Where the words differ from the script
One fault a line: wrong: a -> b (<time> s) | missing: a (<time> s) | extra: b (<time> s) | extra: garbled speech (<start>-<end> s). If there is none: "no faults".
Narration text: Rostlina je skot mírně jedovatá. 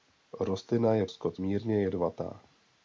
no faults